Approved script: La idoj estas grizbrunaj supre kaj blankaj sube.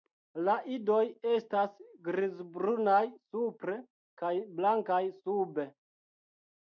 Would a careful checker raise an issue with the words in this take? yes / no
no